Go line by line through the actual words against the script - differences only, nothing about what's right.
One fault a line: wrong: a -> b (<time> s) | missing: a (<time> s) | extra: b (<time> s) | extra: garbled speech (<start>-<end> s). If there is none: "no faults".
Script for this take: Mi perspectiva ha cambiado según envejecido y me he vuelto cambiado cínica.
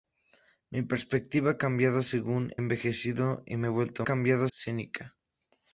no faults